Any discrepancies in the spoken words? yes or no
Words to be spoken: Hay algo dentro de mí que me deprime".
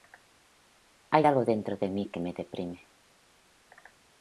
no